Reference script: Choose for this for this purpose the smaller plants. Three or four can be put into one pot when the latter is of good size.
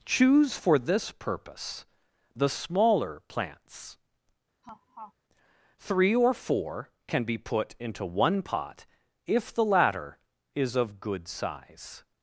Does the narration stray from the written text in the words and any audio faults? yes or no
yes